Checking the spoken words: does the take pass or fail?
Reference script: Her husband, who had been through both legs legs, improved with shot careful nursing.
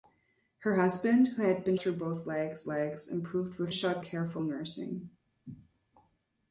pass